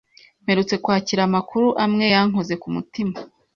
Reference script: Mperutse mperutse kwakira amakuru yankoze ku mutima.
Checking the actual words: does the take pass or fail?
fail